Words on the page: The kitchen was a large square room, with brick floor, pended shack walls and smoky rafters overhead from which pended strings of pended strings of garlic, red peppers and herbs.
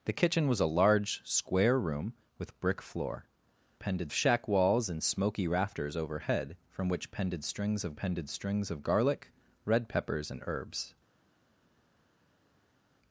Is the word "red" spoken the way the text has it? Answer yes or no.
yes